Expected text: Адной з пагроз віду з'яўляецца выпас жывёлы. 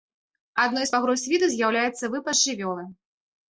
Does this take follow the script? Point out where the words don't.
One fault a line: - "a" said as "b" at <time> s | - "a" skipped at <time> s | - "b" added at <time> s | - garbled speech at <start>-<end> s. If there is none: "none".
none